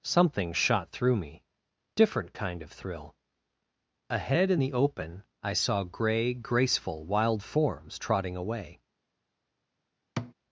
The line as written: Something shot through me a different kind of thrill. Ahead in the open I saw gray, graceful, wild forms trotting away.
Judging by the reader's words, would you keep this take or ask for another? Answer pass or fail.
fail